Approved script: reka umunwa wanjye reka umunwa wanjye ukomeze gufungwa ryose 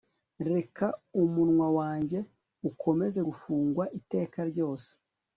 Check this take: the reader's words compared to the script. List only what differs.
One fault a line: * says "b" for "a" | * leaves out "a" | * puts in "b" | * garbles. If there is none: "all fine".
* leaves out "reka umunwa wanjye"
* puts in "iteka"